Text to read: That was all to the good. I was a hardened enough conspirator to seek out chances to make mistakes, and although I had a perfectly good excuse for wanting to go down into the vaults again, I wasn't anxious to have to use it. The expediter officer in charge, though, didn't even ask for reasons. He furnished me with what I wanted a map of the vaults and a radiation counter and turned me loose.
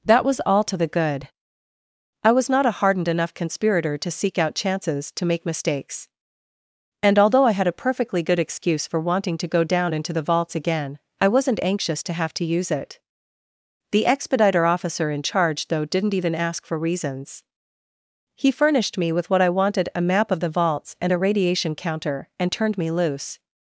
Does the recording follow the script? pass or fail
fail